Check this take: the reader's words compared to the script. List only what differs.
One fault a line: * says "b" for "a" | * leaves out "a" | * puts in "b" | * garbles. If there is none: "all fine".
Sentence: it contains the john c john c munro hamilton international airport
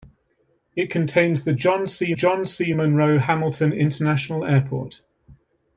all fine